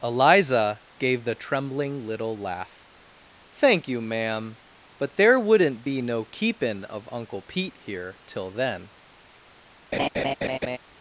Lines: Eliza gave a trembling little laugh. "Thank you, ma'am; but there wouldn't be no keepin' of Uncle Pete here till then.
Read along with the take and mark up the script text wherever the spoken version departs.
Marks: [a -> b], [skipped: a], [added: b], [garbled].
Eliza gave [a -> the] trembling little laugh. "Thank you, ma'am; but there wouldn't be no keepin' of Uncle Pete here till then.